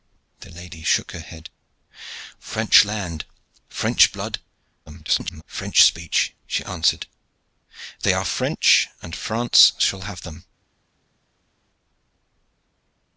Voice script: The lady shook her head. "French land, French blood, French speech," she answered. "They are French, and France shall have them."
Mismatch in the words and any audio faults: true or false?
true